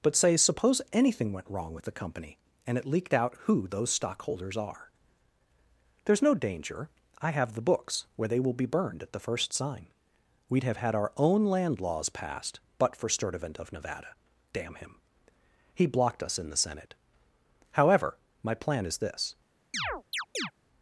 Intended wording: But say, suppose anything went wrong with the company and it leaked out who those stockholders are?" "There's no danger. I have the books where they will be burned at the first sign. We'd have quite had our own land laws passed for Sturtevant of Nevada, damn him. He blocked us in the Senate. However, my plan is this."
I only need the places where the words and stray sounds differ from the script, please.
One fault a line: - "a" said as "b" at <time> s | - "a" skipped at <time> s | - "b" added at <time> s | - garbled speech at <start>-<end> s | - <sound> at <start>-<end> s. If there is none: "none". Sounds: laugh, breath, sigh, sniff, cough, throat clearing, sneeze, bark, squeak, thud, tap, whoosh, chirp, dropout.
- "quite" skipped at 10.8 s
- "but" added at 12.8 s
- chirp at 19.7-20.5 s